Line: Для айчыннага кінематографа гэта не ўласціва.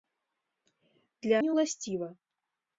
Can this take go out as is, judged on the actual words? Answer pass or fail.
fail